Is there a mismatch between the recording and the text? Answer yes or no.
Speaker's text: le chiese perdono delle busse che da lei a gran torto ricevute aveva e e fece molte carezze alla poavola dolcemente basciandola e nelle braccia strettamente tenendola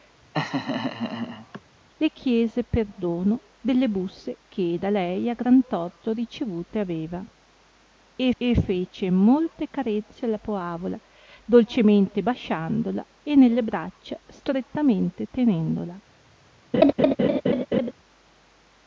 no